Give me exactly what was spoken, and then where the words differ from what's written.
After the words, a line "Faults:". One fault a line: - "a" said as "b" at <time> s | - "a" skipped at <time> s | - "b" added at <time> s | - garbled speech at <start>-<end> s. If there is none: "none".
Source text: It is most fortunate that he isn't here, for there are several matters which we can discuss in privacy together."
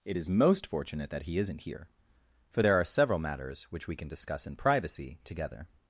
It is most fortunate that he isn't here, for there are several matters which we can discuss in privacy together."
Faults:
none